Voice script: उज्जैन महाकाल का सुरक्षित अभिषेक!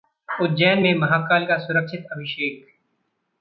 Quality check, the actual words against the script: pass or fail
fail